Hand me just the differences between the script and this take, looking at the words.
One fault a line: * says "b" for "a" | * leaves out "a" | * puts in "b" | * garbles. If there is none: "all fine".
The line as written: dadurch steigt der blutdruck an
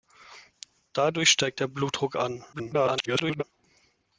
* garbles